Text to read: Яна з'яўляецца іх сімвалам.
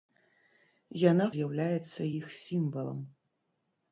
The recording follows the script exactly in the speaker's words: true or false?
true